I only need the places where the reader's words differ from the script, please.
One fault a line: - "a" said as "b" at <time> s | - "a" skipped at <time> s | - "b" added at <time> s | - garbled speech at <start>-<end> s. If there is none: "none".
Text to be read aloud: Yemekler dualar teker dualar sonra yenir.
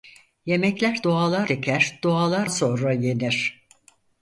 none